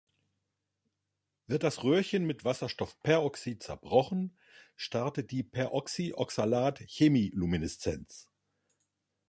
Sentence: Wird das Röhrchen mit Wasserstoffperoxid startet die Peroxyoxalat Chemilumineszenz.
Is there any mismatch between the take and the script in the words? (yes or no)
yes